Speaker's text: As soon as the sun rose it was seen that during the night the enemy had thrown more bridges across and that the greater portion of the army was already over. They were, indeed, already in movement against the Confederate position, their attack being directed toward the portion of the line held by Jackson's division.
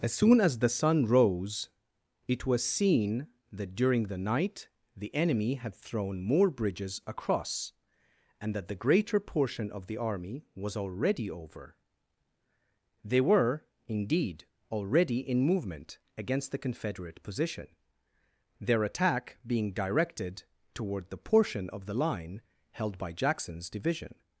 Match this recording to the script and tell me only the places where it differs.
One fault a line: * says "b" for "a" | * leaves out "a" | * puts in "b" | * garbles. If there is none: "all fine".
all fine